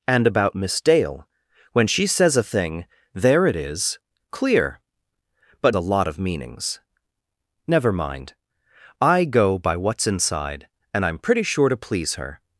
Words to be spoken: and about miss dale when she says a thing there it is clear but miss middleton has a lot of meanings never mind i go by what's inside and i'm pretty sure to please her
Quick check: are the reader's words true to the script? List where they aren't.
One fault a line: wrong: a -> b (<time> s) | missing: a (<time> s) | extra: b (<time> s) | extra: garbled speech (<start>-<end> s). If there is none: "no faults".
missing: miss middleton has (5.8 s)